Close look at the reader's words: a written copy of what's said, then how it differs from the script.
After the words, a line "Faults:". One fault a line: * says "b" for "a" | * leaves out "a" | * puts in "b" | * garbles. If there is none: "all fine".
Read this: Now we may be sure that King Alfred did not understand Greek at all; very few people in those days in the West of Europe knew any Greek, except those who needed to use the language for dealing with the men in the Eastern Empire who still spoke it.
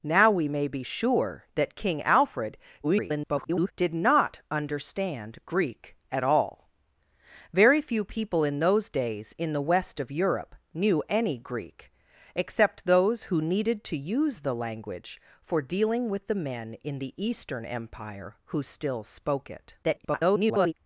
Now we may be sure that King Alfred [garbled] did not understand Greek at all; very few people in those days in the West of Europe knew any Greek, except those who needed to use the language for dealing with the men in the Eastern Empire who still spoke it. [garbled]
Faults:
* garbles
* garbles